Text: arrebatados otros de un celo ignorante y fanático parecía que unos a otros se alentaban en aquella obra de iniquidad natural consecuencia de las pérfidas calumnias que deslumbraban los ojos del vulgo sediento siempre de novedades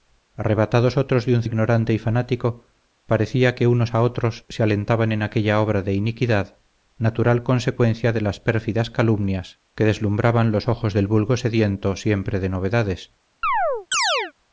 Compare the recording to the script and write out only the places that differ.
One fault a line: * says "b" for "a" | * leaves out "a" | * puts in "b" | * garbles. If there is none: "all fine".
* leaves out "celo"